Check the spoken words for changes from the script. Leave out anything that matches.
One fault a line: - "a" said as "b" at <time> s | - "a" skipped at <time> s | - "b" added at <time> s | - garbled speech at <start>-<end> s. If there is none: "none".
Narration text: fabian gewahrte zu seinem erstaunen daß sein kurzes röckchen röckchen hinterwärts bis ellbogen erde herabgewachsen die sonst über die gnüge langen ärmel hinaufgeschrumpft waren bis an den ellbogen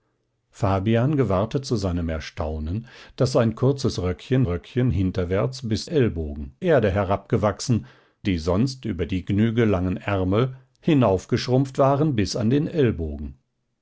none